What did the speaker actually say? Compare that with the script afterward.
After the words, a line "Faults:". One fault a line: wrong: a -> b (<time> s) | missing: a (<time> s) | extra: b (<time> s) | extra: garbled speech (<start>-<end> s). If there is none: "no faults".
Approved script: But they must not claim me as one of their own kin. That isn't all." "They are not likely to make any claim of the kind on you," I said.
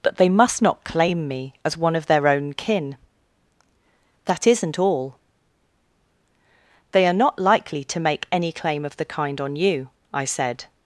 But they must not claim me as one of their own kin. That isn't all." "They are not likely to make any claim of the kind on you," I said.
Faults:
no faults